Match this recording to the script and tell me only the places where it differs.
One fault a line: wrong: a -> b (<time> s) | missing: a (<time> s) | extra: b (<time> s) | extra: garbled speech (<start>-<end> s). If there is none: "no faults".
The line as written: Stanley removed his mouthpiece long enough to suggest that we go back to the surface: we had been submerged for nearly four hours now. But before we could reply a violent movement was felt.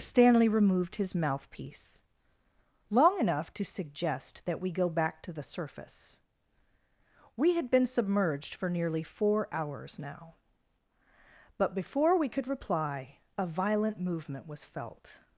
no faults